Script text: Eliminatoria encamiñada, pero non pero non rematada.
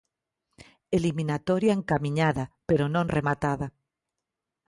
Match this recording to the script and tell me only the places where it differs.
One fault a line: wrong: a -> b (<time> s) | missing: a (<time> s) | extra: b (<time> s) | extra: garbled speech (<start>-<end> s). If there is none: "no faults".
missing: pero non (3.1 s)